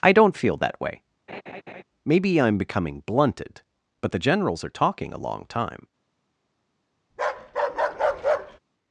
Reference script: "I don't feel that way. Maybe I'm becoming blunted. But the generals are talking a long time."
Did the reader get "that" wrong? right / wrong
right